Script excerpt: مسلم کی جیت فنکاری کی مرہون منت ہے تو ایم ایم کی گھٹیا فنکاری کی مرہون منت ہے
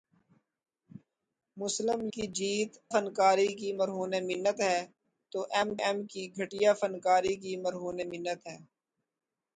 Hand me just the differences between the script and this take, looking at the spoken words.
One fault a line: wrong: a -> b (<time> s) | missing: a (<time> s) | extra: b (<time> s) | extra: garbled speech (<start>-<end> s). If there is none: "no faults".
no faults